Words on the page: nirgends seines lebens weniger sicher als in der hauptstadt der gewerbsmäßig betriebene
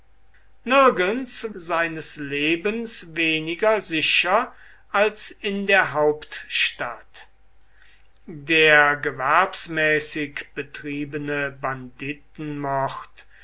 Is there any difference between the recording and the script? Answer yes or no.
no